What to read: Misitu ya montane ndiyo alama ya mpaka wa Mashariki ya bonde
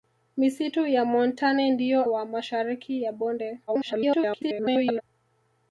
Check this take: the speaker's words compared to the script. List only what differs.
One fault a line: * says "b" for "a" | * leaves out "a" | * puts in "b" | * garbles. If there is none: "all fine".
* leaves out "alama ya mpaka"
* garbles